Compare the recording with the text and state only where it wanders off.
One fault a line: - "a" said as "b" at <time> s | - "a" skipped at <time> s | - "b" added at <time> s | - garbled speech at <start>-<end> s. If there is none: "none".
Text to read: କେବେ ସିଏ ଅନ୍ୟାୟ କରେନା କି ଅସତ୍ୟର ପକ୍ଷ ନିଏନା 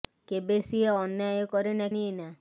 - "କି ଅସତ୍ୟର ପକ୍ଷ" skipped at 1.9 s